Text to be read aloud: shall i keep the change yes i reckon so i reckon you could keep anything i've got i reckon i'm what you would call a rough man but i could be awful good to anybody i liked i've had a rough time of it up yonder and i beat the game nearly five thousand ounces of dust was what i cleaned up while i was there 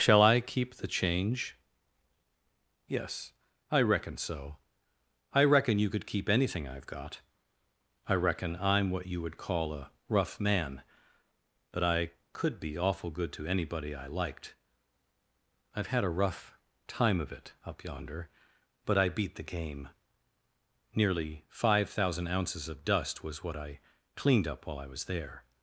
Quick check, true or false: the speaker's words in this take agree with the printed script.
false